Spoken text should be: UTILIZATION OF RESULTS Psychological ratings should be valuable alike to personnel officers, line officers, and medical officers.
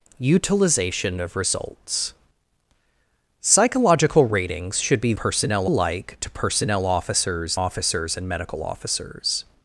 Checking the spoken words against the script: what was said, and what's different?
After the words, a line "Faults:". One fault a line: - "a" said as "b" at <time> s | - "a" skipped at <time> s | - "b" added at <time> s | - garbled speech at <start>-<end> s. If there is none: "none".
UTILIZATION OF RESULTS Psychological ratings should be personnel alike to personnel officers, officers, and medical officers.
Faults:
- "valuable" said as "personnel" at 5.1 s
- "line" skipped at 7.6 s